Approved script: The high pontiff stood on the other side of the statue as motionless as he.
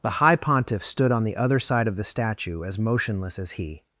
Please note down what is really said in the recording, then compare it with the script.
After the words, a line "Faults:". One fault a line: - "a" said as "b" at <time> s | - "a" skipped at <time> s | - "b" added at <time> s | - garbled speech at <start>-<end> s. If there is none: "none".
The high pontiff stood on the other side of the statue as motionless as he.
Faults:
none